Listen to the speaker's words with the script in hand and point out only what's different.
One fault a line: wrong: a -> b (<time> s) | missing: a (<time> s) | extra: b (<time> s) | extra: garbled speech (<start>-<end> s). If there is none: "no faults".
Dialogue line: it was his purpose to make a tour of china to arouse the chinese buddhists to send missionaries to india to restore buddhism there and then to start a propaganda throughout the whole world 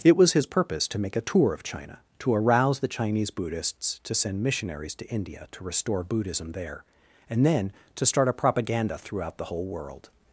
no faults